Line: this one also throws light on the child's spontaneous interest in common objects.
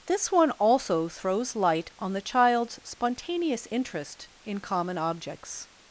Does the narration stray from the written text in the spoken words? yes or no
no